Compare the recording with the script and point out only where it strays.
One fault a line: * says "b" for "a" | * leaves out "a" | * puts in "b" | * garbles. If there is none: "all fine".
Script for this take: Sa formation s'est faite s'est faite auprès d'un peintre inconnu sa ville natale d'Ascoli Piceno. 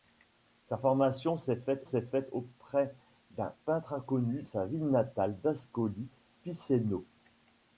all fine